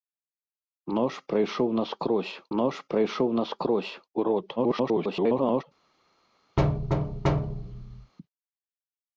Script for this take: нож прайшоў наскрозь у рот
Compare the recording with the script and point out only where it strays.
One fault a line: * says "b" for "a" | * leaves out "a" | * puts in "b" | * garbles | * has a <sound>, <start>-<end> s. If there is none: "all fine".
* puts in "нож прайшоў наскрозь"
* garbles
* has a thud, 6.6-8.1 s